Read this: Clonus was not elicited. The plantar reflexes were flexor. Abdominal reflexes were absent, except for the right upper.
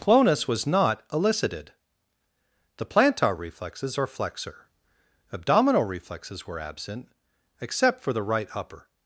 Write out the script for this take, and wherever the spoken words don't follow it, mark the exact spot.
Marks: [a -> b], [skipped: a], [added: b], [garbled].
Clonus was not elicited. The plantar reflexes [were -> are] flexor. Abdominal reflexes were absent, except for the right upper.